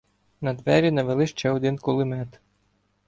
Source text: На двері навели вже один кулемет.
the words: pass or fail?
fail